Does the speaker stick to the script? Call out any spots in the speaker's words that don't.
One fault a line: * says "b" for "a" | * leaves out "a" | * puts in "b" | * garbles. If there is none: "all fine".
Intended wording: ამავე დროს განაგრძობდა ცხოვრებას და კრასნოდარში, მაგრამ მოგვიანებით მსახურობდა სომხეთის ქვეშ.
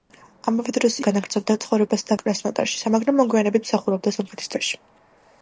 all fine